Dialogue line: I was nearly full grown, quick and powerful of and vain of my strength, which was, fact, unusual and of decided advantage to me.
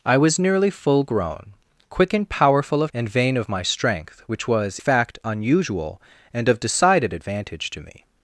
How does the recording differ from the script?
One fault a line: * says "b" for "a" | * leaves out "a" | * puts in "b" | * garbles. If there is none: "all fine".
all fine